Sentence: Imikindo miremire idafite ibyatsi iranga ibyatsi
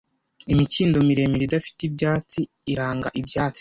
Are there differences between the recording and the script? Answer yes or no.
no